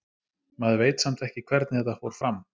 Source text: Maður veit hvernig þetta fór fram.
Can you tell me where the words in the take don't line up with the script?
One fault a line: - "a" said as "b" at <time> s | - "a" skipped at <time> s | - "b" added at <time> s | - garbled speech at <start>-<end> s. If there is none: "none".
- "samt ekki" added at 1.1 s